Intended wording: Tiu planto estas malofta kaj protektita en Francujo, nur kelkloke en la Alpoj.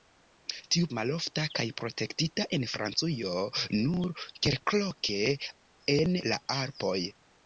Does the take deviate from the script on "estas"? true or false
true